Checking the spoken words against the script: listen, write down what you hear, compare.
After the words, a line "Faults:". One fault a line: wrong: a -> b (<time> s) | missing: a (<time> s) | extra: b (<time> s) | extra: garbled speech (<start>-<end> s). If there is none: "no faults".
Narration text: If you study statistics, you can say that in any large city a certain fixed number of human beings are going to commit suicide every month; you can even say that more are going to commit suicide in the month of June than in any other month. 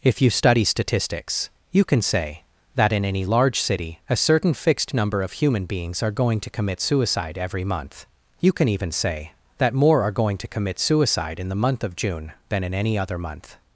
If you study statistics, you can say that in any large city a certain fixed number of human beings are going to commit suicide every month; you can even say that more are going to commit suicide in the month of June than in any other month.
Faults:
no faults